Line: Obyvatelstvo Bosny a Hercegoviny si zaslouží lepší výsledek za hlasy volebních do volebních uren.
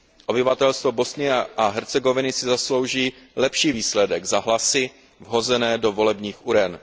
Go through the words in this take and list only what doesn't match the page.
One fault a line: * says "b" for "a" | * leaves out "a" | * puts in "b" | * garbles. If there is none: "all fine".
* says "vhozené" for "volebních"